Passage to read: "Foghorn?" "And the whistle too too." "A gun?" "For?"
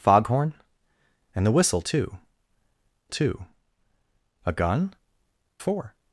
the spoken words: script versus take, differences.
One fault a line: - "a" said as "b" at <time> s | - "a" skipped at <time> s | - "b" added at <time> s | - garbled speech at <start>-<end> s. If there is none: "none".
none